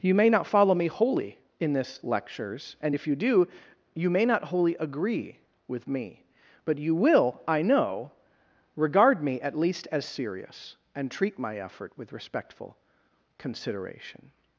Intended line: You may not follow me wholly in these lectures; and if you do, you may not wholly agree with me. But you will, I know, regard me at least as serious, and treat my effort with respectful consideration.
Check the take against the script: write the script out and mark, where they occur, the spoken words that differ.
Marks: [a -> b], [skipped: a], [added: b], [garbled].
You may not follow me wholly in [these -> this] lectures; and if you do, you may not wholly agree with me. But you will, I know, regard me at least as serious, and treat my effort with respectful consideration.